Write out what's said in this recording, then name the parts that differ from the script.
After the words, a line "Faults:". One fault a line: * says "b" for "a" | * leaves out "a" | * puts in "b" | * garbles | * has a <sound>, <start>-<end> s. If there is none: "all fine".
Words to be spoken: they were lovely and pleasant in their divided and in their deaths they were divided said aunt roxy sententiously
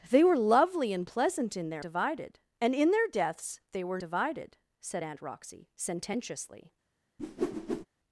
they were lovely and pleasant in their divided and in their deaths they were divided said aunt roxy sententiously
Faults:
* has a whoosh, 7.2-7.9 s